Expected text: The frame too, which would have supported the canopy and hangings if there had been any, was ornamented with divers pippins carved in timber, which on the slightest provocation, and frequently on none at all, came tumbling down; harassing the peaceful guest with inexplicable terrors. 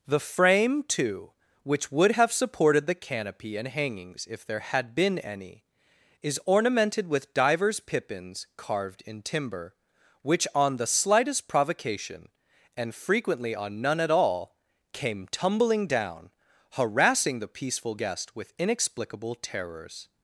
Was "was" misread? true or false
true